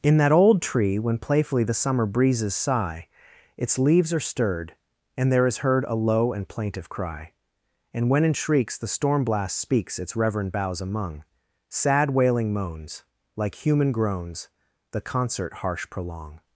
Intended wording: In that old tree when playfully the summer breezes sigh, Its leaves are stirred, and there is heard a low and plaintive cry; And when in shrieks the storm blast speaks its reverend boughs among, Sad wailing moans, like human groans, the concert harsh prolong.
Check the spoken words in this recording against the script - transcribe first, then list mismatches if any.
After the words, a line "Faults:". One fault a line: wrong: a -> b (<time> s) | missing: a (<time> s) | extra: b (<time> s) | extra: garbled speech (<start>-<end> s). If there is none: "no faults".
In that old tree when playfully the summer breezes sigh, Its leaves are stirred, and there is heard a low and plaintive cry; And when in shrieks the storm blast speaks its reverend boughs among, Sad wailing moans, like human groans, the concert harsh prolong.
Faults:
no faults